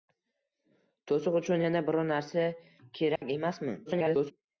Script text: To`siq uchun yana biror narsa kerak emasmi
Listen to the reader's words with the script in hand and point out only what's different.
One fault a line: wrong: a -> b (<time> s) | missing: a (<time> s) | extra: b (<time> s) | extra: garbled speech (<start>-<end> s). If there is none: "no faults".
extra: garbled speech (3.9-4.3 s)